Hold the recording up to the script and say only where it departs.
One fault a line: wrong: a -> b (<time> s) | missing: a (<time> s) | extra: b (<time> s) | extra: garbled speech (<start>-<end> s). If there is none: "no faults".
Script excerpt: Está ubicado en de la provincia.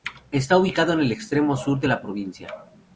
extra: el extremo sur (1.0 s)